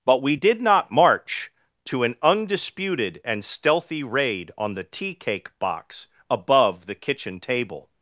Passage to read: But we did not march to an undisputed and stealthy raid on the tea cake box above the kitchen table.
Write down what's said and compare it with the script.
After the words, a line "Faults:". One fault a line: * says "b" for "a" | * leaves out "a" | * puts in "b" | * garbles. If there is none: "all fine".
But we did not march to an undisputed and stealthy raid on the tea cake box above the kitchen table.
Faults:
all fine